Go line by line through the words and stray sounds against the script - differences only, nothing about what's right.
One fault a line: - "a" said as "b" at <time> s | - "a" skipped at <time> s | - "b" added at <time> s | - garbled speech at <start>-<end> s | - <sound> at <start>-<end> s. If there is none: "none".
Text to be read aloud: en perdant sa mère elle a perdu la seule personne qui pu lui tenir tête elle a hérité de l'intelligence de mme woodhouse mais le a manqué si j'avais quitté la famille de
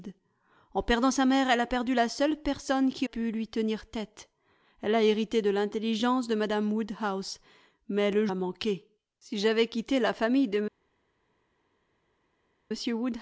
none